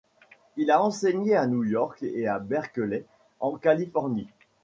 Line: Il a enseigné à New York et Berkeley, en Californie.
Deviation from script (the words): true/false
true